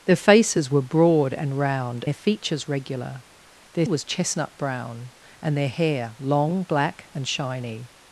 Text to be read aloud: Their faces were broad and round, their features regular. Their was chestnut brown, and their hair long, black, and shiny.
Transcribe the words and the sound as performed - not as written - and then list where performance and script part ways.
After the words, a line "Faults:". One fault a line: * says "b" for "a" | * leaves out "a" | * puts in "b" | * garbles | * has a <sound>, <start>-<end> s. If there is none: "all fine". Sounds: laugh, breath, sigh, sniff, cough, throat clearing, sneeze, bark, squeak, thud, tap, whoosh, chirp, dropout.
Their faces were broad and round, their features regular. Their was chestnut brown, and their hair long, black, and shiny.
Faults:
all fine